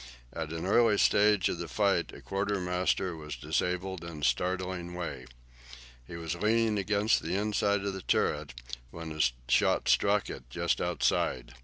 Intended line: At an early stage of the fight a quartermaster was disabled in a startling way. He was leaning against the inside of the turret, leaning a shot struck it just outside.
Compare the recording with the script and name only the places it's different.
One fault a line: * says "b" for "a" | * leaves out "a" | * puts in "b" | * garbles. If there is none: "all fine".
* says "when" for "leaning"